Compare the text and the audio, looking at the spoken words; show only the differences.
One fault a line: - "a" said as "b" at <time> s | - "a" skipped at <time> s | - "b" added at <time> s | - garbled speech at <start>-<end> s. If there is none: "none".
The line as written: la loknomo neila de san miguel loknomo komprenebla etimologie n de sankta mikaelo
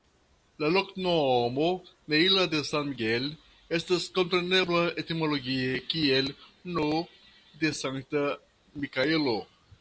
- "loknomo" said as "estas" at 3.8 s
- "kiel" added at 5.9 s